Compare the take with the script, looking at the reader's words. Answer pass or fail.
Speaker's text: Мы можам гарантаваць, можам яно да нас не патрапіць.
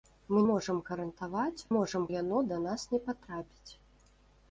pass